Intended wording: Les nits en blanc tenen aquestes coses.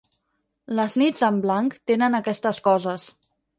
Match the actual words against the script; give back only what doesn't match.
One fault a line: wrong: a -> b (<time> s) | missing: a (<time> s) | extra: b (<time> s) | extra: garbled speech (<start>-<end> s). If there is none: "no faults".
no faults